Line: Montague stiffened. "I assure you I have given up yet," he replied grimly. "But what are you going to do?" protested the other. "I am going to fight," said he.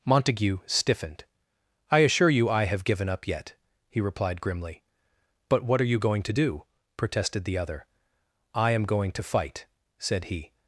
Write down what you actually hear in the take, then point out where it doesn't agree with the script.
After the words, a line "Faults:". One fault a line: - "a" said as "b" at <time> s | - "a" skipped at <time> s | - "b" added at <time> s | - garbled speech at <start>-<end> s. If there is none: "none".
Montague stiffened. "I assure you I have given up yet," he replied grimly. "But what are you going to do?" protested the other. "I am going to fight," said he.
Faults:
none